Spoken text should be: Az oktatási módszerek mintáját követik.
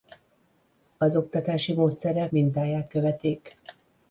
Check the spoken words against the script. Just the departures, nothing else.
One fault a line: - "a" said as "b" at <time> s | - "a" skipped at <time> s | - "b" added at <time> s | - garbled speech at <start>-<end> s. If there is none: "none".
none